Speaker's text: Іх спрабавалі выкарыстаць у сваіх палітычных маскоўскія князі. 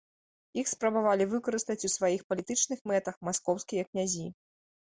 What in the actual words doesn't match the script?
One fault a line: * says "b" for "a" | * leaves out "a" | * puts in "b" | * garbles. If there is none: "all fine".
* puts in "мэтах"